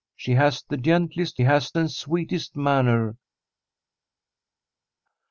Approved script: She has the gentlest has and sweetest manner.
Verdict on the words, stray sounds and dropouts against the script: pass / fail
pass